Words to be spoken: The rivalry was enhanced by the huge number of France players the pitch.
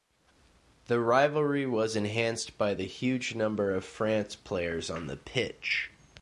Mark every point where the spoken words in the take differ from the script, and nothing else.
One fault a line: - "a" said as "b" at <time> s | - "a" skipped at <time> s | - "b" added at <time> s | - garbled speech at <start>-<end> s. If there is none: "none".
- "on" added at 4.9 s